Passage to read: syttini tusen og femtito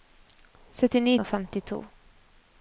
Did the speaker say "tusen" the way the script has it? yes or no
no